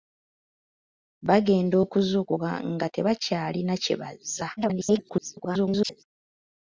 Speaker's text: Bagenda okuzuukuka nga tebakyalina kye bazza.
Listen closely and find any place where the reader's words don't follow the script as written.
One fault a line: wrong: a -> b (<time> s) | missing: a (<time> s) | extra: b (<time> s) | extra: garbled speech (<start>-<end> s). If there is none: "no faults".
extra: garbled speech (4.6-6.0 s)